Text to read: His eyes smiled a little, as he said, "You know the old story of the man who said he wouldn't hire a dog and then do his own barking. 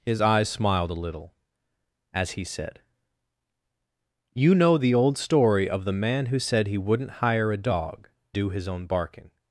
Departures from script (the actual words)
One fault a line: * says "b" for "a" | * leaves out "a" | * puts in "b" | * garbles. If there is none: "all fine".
* leaves out "and then"